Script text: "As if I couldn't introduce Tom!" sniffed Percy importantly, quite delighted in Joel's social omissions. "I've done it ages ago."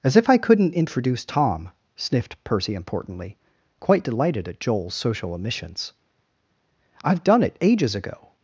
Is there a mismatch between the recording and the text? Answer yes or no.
yes